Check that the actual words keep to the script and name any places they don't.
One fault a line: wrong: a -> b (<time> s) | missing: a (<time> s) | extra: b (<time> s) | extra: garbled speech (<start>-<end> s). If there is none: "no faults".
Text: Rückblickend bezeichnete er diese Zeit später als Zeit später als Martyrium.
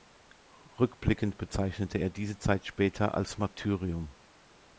missing: Zeit später als (3.4 s)